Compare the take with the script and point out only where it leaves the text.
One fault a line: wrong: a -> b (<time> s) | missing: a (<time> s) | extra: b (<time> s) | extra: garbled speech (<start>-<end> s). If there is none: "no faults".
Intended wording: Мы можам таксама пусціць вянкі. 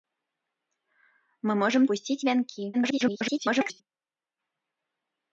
missing: таксама (1.8 s)
extra: garbled speech (2.7-3.8 s)